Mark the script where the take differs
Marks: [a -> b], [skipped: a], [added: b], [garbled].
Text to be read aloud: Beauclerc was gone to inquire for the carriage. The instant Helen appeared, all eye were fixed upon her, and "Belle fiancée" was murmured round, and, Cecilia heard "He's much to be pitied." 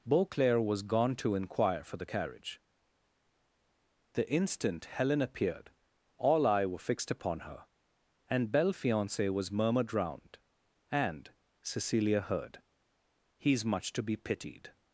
Beauclerc was gone to inquire for the carriage. The instant Helen appeared, all eye were fixed upon her, and "Belle fiancée" was murmured round, and, Cecilia heard "He's much to be pitied."